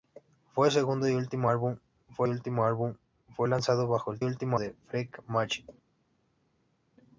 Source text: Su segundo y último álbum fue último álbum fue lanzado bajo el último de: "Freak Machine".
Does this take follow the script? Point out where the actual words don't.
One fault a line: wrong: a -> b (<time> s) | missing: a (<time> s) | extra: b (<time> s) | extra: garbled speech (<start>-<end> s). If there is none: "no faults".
no faults